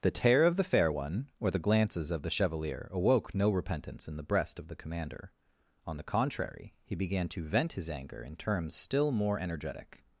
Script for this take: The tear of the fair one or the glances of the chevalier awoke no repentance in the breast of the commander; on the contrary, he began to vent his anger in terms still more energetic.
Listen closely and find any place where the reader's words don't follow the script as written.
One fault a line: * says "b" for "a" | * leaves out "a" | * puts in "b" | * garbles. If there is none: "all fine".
all fine